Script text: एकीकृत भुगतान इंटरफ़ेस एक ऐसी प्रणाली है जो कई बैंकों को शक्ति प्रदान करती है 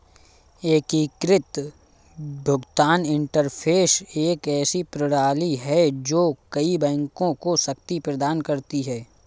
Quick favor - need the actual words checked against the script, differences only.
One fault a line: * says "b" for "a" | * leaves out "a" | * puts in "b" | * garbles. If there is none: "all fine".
all fine